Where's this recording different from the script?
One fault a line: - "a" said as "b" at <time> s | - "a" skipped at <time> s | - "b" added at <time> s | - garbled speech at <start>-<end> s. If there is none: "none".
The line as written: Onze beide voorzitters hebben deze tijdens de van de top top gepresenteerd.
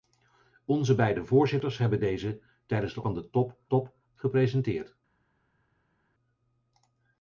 none